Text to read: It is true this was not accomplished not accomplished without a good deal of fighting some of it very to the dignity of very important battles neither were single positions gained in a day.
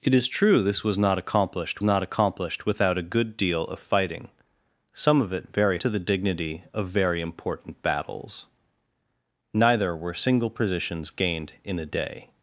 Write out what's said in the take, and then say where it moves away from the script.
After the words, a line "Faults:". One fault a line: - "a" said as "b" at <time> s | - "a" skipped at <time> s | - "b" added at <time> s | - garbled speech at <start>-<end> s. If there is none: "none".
It is true this was not accomplished not accomplished without a good deal of fighting some of it very to the dignity of very important battles neither were single positions gained in a day.
Faults:
none